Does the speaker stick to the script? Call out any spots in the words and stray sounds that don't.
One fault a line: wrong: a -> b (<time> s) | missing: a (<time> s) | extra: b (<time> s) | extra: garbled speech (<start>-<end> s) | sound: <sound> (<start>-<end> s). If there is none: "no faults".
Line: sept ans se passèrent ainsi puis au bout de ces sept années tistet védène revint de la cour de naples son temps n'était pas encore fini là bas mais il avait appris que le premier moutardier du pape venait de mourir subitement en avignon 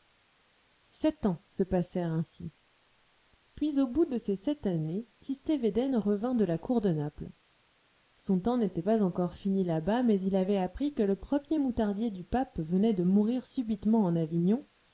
no faults